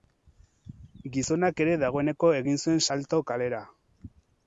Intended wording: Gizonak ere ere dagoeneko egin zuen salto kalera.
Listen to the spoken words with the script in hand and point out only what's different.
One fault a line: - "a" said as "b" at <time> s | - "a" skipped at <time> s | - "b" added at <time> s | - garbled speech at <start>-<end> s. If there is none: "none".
- "ere" skipped at 1.8 s